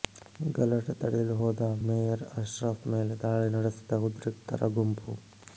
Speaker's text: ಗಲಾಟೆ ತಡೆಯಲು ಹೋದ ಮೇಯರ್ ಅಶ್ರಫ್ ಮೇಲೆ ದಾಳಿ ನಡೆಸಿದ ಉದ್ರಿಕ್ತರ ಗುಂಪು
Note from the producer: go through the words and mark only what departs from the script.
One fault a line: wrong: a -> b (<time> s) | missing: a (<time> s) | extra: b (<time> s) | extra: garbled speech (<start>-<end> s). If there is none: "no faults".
no faults